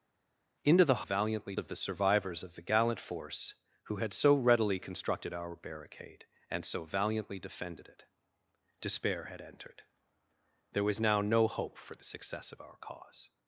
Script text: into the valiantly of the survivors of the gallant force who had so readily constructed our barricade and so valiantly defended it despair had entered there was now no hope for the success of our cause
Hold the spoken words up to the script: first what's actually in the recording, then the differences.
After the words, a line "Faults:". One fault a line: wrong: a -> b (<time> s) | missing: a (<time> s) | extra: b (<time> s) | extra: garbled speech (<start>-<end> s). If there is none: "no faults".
into the valiantly of the survivors of the gallant force who had so readily constructed our barricade and so valiantly defended it despair had entered there was now no hope for the success of our cause
Faults:
no faults